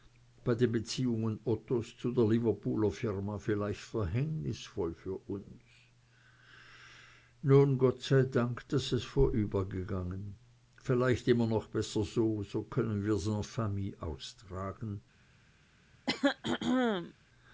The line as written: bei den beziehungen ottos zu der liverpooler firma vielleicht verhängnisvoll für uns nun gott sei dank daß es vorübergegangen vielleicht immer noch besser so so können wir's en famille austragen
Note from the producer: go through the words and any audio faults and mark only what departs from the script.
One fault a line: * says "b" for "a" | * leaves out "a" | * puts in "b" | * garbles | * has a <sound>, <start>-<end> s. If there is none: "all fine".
* has a throat clearing, 16.1-17.1 s